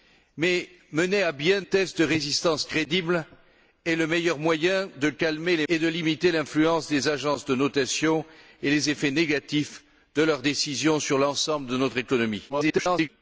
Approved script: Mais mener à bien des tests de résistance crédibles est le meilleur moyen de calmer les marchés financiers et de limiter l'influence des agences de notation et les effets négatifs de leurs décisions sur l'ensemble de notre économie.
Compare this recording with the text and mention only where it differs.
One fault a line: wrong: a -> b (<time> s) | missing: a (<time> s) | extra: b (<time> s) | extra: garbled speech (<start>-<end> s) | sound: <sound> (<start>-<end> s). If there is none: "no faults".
missing: des (1.6 s)
missing: marchés financiers (5.7 s)
extra: garbled speech (12.5-13.1 s)